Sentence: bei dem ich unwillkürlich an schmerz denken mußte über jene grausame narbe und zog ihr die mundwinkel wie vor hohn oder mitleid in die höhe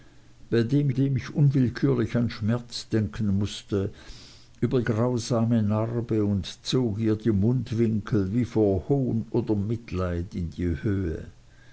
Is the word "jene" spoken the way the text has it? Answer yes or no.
no